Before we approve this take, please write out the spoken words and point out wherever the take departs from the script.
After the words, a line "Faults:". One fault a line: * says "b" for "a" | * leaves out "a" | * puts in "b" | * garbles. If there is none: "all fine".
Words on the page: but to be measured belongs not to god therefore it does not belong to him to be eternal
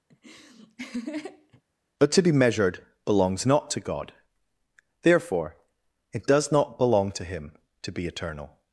but to be measured belongs not to god therefore it does not belong to him to be eternal
Faults:
all fine